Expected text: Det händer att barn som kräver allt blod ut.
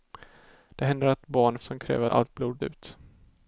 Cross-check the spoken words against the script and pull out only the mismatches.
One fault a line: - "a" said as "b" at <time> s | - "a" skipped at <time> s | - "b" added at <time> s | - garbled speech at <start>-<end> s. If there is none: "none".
none